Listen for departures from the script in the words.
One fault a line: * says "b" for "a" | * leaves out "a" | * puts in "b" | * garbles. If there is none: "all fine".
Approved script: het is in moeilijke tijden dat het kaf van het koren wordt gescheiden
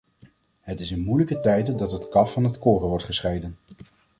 all fine